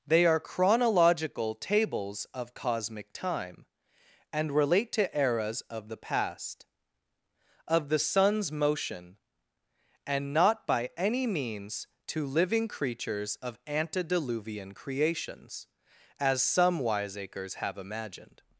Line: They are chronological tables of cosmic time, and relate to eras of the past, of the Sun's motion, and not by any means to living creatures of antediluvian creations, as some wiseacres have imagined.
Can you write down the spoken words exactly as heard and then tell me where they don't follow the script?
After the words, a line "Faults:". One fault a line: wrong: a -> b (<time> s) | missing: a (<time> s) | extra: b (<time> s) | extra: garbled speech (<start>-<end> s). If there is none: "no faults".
They are chronological tables of cosmic time, and relate to eras of the past, of the Sun's motion, and not by any means to living creatures of antediluvian creations, as some wiseacres have imagined.
Faults:
no faults